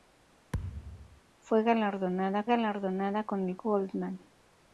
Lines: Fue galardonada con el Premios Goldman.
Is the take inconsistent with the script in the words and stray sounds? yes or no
yes